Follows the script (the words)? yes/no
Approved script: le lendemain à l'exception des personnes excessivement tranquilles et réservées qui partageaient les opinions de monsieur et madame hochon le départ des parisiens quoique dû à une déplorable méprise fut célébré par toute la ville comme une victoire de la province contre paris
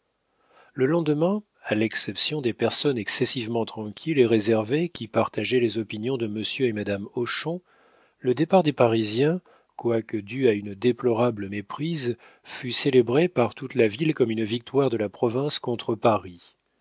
yes